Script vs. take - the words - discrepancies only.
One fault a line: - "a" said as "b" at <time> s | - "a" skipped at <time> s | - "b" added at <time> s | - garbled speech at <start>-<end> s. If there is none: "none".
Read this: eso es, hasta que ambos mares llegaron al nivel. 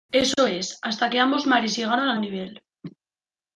none